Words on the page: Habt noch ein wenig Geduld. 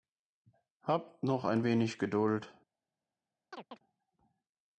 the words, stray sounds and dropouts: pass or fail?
fail